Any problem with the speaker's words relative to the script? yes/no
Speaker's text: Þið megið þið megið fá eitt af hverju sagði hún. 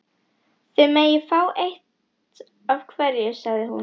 yes